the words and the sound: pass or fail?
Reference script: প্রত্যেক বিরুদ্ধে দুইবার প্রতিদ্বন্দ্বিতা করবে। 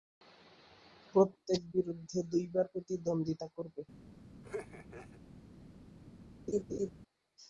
fail